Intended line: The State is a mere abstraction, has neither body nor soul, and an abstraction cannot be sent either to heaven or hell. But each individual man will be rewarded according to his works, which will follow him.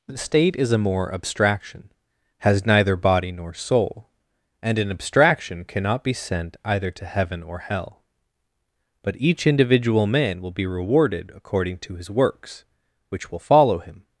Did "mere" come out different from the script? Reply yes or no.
yes